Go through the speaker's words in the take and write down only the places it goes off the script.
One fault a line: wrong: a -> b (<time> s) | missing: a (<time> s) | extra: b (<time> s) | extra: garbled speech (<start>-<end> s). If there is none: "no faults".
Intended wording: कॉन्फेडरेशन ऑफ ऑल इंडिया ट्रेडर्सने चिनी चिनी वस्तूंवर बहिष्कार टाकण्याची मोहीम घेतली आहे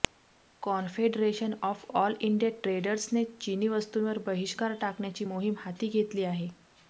missing: चिनी (3.7 s)
extra: हाती (5.6 s)